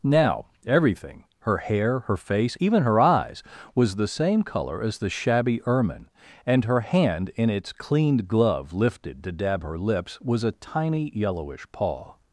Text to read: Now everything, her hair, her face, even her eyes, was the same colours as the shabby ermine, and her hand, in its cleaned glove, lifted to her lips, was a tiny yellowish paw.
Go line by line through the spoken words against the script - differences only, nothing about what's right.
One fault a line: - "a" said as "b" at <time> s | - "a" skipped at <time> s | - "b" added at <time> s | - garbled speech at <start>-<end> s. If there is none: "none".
- "colours" said as "colour" at 4.4 s
- "dab" added at 9.3 s